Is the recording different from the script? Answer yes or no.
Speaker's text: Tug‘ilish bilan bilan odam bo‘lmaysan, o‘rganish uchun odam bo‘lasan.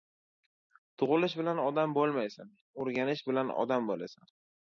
yes